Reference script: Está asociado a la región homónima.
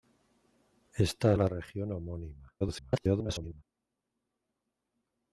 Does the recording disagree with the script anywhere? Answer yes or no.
yes